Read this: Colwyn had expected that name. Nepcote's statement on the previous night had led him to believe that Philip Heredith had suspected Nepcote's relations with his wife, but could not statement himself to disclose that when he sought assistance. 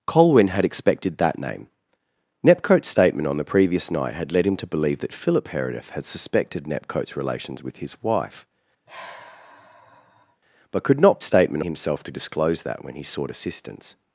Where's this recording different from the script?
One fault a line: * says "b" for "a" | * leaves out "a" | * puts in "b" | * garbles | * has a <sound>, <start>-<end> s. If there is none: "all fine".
* has a sigh, 8.9-10.4 s